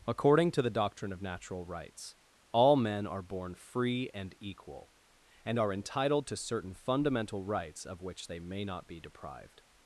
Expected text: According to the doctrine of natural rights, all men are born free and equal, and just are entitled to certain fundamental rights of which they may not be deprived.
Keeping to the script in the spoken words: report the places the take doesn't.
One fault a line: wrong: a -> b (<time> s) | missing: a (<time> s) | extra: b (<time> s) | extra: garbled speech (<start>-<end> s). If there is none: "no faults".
missing: just (5.6 s)